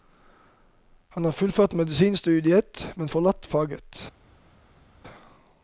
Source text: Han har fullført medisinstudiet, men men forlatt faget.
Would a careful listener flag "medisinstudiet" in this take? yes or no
no